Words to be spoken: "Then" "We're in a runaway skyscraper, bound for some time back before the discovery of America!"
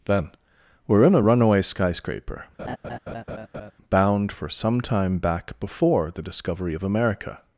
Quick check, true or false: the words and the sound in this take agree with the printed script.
false